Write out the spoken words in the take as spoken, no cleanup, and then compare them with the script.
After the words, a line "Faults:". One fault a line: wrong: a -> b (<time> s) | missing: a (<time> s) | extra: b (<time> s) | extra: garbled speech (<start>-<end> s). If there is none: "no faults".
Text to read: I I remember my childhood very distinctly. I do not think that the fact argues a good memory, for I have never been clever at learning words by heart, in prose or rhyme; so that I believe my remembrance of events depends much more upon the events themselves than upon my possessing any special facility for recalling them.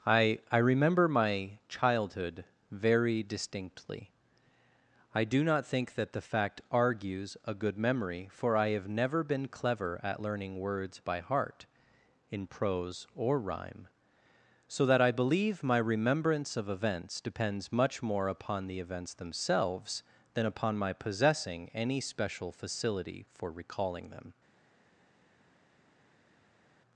I I remember my childhood very distinctly. I do not think that the fact argues a good memory, for I have never been clever at learning words by heart, in prose or rhyme; so that I believe my remembrance of events depends much more upon the events themselves than upon my possessing any special facility for recalling them.
Faults:
no faults